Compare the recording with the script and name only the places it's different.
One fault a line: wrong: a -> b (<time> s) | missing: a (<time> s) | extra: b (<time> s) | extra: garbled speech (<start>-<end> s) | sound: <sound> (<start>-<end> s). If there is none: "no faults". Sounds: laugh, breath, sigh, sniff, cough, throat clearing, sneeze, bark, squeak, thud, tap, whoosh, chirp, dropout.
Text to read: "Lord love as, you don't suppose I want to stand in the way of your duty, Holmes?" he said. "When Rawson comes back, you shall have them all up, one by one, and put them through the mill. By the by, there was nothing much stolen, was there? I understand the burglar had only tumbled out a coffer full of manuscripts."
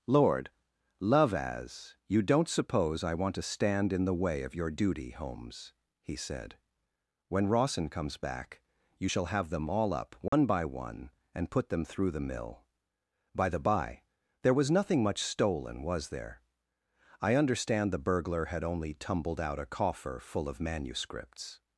sound: dropout (10.3-10.3 s)